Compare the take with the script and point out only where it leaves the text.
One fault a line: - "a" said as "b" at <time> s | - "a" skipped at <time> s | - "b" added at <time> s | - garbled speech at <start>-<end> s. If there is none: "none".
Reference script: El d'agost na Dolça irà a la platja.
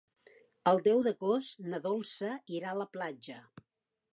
- "deu" added at 0.9 s